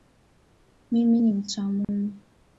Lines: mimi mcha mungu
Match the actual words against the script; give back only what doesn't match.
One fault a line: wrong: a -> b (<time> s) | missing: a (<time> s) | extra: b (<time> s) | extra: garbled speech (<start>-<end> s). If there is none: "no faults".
extra: ni (1.2 s)